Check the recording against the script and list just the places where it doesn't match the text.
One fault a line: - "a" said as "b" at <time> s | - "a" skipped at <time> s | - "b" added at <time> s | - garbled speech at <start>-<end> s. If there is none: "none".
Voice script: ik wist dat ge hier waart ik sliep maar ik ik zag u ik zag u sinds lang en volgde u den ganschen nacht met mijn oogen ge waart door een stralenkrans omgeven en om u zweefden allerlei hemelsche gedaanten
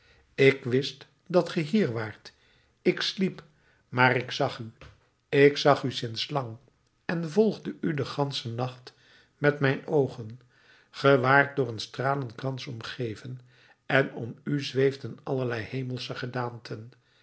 - "ik" skipped at 4.3 s